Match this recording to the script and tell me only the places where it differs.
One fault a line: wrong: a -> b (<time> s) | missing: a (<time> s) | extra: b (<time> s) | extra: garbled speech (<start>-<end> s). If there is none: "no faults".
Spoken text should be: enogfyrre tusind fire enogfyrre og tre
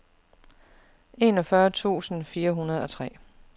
wrong: enogfyrre -> hundrede (2.5 s)